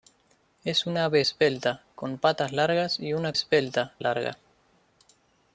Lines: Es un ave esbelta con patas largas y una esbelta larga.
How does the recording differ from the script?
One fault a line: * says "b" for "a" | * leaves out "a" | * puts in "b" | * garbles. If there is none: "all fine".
all fine